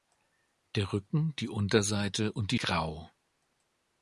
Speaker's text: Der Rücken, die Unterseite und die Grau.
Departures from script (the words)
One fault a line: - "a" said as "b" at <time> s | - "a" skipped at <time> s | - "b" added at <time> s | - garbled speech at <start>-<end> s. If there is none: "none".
none